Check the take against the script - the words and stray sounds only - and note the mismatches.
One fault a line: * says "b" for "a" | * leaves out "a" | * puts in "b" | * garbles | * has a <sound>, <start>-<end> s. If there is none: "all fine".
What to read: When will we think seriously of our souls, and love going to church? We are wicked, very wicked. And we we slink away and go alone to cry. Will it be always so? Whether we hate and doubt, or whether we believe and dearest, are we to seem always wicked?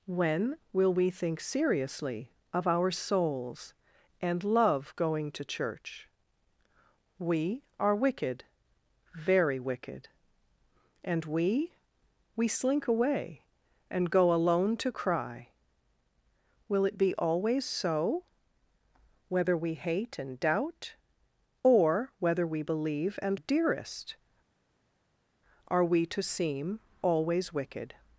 all fine